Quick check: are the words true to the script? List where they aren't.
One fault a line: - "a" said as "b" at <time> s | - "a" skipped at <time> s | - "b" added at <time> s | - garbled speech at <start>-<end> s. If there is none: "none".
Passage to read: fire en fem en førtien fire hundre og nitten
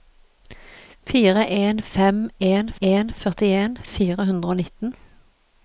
- "en" added at 2.8 s